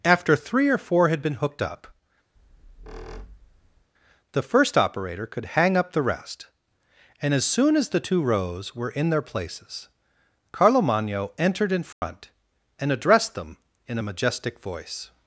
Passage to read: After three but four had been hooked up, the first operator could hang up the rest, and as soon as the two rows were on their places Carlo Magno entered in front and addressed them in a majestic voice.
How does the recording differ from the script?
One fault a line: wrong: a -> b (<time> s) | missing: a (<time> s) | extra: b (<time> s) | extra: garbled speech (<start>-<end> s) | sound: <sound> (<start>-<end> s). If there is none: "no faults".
wrong: but -> or (0.7 s)
sound: squeak (2.4-3.9 s)
wrong: on -> in (8.9 s)
sound: dropout (11.9-12.0 s)